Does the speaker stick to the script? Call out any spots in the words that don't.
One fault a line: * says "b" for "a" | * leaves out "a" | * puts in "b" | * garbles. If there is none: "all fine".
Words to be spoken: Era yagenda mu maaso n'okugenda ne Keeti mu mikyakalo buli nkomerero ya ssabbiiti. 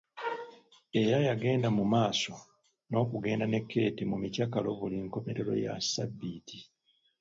all fine